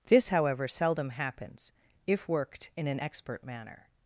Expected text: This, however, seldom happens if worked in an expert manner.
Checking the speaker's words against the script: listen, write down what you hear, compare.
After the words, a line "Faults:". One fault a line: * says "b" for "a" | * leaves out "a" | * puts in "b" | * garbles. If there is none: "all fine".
This, however, seldom happens if worked in an expert manner.
Faults:
all fine